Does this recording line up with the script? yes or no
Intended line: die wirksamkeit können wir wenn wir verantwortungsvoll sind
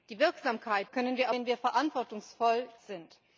yes